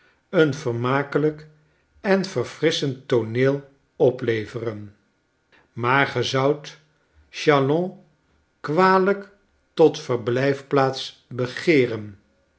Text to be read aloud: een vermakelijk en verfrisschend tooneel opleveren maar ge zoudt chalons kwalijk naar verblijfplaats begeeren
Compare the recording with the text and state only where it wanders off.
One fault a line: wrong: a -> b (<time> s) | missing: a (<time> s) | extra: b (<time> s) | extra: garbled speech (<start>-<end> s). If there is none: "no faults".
wrong: naar -> tot (9.7 s)